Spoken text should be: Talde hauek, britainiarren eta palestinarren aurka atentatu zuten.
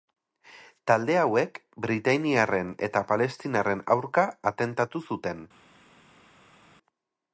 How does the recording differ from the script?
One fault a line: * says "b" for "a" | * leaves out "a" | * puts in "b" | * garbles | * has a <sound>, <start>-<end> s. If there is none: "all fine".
all fine